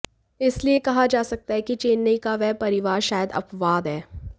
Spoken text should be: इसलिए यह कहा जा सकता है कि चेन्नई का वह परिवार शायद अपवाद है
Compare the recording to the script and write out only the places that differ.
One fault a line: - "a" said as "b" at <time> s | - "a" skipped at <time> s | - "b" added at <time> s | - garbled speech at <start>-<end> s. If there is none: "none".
none